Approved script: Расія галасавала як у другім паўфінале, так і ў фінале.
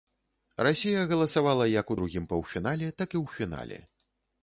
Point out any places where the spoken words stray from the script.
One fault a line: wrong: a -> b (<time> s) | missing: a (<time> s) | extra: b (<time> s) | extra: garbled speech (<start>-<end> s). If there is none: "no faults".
no faults